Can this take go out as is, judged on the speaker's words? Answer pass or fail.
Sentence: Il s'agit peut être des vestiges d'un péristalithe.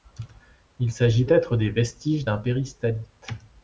fail